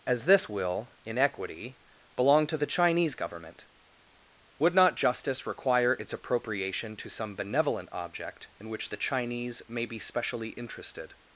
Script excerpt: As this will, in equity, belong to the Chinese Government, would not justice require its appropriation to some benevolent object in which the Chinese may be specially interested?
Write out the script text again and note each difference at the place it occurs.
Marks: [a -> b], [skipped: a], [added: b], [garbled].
As this will, in equity, belong to the Chinese Government, would not justice require its appropriation to some benevolent object in which the Chinese may be specially interested?